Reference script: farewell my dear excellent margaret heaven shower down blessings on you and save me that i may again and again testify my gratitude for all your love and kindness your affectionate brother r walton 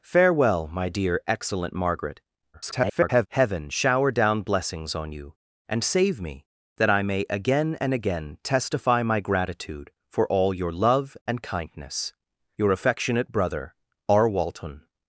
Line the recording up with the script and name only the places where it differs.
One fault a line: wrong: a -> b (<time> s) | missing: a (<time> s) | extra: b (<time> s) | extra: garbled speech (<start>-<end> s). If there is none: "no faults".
extra: garbled speech (2.5-3.3 s)